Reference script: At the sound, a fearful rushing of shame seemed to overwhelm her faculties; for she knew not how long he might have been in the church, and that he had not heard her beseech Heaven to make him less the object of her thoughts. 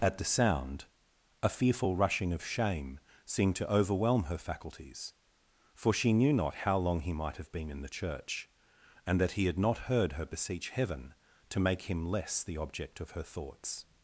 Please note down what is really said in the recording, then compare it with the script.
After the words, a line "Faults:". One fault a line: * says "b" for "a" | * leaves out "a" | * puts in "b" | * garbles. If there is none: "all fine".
At the sound, a fearful rushing of shame seemed to overwhelm her faculties; for she knew not how long he might have been in the church, and that he had not heard her beseech Heaven to make him less the object of her thoughts.
Faults:
all fine